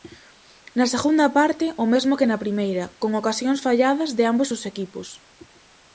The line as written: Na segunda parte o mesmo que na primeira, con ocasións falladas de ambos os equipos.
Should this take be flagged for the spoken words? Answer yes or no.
no